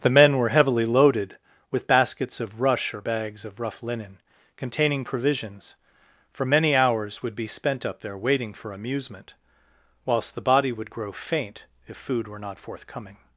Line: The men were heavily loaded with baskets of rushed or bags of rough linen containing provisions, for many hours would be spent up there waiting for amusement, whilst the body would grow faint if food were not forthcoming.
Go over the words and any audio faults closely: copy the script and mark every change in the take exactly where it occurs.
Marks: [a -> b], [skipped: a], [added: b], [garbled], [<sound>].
The men were heavily loaded with baskets of [rushed -> rush] or bags of rough linen containing provisions, for many hours would be spent up there waiting for amusement, whilst the body would grow faint if food were not forthcoming.